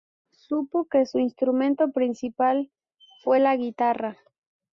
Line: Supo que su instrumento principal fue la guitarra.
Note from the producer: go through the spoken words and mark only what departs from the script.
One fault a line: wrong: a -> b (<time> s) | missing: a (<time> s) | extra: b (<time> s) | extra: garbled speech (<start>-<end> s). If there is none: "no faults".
no faults